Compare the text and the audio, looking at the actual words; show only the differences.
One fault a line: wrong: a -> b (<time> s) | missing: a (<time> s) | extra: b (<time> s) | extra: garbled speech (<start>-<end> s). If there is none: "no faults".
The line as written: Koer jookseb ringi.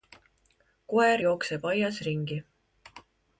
extra: aias (1.7 s)